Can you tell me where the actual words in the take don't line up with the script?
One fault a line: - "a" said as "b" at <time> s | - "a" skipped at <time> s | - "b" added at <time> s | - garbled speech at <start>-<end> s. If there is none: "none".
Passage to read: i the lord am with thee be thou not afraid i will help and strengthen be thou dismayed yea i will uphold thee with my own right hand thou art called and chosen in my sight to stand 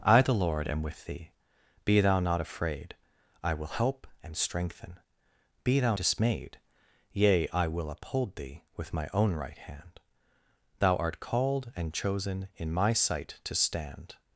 none